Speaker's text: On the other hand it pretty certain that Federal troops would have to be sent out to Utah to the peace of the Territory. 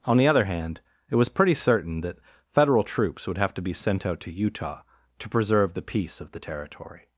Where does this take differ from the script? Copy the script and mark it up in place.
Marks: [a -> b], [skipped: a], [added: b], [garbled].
On the other hand it [added: was] pretty certain that Federal troops would have to be sent out to Utah to [added: preserve] the peace of the Territory.